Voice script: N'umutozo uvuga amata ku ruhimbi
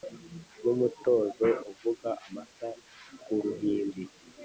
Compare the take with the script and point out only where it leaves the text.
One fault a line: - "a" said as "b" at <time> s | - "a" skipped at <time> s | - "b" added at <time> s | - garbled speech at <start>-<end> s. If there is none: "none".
none